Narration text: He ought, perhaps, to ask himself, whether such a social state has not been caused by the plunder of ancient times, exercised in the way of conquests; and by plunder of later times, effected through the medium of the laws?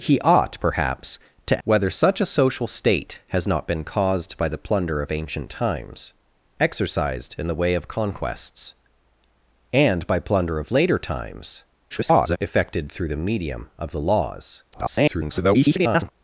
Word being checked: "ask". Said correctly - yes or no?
no